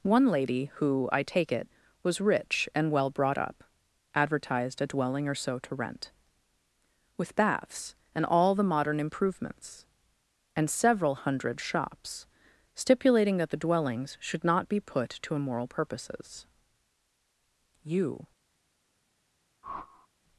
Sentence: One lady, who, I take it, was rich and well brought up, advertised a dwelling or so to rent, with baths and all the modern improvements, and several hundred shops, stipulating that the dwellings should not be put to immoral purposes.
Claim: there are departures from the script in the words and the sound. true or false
true